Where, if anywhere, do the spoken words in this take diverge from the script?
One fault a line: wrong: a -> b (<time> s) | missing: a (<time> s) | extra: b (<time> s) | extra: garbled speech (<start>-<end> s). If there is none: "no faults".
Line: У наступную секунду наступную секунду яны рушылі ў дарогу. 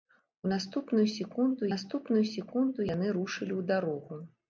no faults